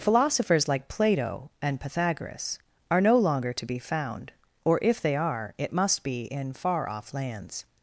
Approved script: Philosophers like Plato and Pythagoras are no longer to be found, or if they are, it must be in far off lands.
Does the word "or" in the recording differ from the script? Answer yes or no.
no